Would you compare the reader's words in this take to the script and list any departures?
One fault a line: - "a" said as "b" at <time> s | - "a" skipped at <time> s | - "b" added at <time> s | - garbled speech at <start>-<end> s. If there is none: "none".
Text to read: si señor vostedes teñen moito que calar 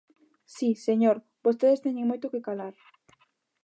none